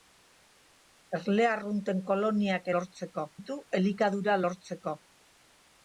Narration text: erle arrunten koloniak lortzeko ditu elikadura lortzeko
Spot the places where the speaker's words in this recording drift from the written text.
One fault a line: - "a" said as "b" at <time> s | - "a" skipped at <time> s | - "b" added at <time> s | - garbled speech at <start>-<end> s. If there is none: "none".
none